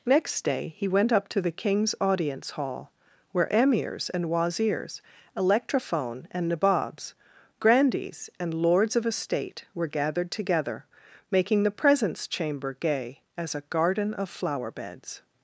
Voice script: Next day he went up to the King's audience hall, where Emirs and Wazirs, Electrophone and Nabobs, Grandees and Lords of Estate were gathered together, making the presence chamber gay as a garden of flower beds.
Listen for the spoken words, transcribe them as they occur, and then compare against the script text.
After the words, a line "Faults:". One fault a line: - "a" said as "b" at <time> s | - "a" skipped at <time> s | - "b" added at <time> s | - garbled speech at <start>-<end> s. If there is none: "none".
Next day he went up to the King's audience hall, where Emirs and Wazirs, Electrophone and Nabobs, Grandees and Lords of Estate were gathered together, making the presence chamber gay as a garden of flower beds.
Faults:
none